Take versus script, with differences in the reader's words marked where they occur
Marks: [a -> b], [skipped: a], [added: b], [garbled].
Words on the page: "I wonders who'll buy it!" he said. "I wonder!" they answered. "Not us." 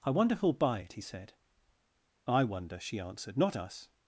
"I [wonders -> wonder] who'll buy it!" he said. "I wonder!" [they -> she] answered. "Not us."